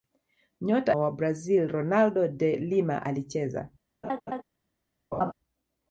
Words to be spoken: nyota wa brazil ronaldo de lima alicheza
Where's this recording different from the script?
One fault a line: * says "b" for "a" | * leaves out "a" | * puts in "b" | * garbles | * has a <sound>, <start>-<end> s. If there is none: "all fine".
* has a laugh, 4.0-4.4 s
* has a laugh, 5.1-5.3 s